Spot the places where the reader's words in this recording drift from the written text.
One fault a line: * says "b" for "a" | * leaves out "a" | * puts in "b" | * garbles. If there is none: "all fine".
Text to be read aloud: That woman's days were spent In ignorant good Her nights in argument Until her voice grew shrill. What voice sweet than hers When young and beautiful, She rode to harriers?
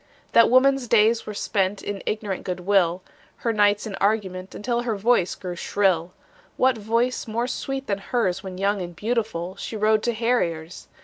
* puts in "will"
* puts in "more"